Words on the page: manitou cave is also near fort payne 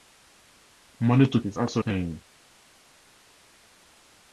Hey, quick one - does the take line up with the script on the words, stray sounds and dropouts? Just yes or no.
no